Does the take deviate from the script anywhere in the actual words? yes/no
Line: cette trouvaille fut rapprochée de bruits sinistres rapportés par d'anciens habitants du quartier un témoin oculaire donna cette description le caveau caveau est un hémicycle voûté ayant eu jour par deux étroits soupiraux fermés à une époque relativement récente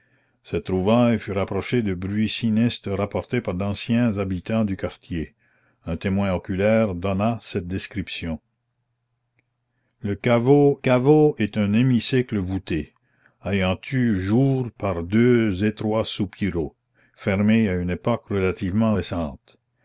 no